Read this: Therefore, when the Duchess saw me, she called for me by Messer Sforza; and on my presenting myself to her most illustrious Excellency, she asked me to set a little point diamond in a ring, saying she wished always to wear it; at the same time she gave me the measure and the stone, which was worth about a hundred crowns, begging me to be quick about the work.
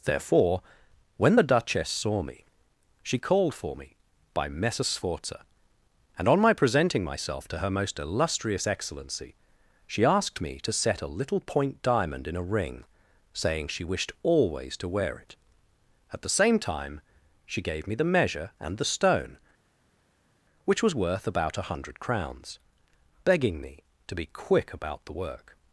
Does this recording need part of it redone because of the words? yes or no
no